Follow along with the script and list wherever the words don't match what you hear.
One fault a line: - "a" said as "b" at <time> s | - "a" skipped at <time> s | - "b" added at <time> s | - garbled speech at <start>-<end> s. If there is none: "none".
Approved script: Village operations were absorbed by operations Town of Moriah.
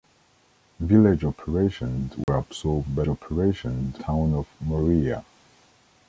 none